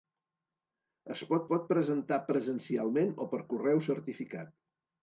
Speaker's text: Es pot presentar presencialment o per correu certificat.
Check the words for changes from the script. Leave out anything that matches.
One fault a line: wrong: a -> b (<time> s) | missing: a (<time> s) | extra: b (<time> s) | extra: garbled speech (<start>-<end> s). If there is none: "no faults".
extra: pot (1.5 s)